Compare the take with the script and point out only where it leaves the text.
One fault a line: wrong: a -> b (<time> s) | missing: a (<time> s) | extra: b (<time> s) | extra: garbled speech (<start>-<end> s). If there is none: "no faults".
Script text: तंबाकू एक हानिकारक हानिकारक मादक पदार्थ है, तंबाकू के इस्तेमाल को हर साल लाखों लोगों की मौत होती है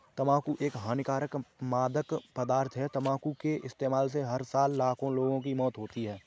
missing: हानिकारक (1.3 s)
wrong: को -> से (4.1 s)